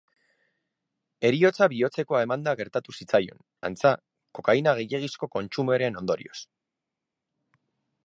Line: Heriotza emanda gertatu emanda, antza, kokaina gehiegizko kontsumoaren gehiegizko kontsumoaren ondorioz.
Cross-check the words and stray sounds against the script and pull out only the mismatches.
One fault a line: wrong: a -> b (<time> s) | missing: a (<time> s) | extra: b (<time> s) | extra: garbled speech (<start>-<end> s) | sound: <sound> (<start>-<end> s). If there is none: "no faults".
extra: bihotzekoa (1.7 s)
wrong: emanda -> zitzaion (3.0 s)
missing: gehiegizko kontsumoaren (6.0 s)